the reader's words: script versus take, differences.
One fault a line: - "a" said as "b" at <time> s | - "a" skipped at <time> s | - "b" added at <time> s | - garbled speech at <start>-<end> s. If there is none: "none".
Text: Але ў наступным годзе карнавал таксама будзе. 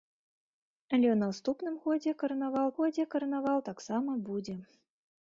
- "годзе карнавал" added at 2.8 s